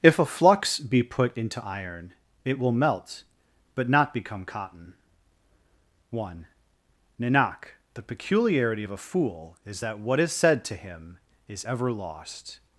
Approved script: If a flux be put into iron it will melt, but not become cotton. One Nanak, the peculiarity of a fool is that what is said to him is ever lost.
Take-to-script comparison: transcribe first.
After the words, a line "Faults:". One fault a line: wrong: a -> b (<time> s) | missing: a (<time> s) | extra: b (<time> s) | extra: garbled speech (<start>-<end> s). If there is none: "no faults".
If a flux be put into iron it will melt, but not become cotton. One Nanak, the peculiarity of a fool is that what is said to him is ever lost.
Faults:
no faults